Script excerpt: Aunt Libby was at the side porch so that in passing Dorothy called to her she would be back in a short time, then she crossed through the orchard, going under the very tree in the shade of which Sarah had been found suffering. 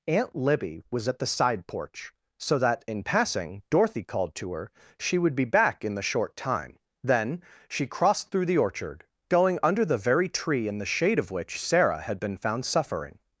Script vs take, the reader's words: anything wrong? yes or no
yes